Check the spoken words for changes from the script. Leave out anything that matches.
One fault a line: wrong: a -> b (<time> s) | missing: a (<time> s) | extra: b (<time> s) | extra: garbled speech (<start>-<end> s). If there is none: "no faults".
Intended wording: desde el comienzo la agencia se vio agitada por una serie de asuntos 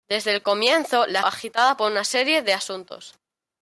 missing: agencia se vio (1.2 s)